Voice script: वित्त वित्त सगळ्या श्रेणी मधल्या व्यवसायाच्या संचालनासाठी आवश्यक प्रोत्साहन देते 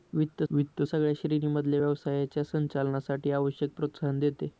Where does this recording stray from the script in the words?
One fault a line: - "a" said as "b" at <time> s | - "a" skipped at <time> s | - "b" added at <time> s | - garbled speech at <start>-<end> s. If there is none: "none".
none